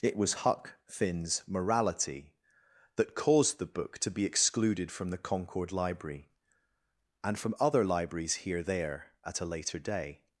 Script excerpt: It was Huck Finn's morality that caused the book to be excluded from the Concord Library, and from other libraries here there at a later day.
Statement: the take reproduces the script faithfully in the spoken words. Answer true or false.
true